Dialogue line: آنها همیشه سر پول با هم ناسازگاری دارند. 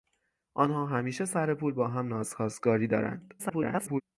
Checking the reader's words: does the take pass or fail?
fail